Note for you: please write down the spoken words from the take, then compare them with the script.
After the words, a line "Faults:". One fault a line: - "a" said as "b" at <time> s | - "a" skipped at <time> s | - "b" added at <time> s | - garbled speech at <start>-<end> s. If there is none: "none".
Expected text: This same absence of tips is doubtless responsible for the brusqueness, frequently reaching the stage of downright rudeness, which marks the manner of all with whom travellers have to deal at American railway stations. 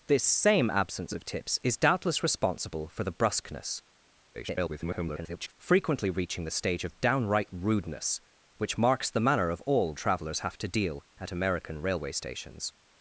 This same absence of tips is doubtless responsible for the brusqueness, [garbled] frequently reaching the stage of downright rudeness, which marks the manner of all travellers have to deal at American railway stations.
Faults:
- garbled speech at 4.3-5.5 s
- "with whom" skipped at 9.9 s